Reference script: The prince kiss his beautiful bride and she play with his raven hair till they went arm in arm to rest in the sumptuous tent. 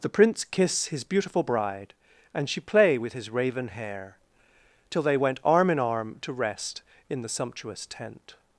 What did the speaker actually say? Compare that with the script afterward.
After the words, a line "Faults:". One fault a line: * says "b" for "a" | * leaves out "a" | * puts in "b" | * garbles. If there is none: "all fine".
The prince kiss his beautiful bride and she play with his raven hair till they went arm in arm to rest in the sumptuous tent.
Faults:
all fine